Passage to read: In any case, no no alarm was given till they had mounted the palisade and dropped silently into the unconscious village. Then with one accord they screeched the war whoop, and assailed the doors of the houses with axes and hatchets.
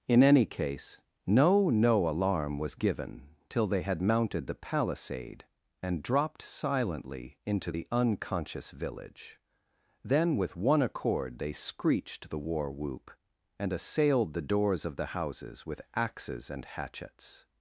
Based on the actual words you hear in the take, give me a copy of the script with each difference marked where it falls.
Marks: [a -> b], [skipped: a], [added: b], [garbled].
In any case, no no alarm was given till they had mounted the palisade and dropped silently into the unconscious village. Then with one accord they screeched the war whoop, and assailed the doors of the houses with axes and hatchets.